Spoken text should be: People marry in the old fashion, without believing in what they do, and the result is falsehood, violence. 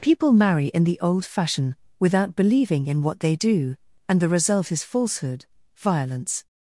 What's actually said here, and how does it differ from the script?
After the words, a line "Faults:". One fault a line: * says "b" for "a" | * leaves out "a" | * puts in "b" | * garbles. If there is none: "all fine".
People marry in the old fashion, without believing in what they do, and the result is falsehood, violence.
Faults:
all fine